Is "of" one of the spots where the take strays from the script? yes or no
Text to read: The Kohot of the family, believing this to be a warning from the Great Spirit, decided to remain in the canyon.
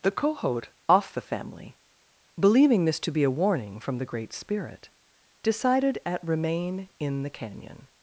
yes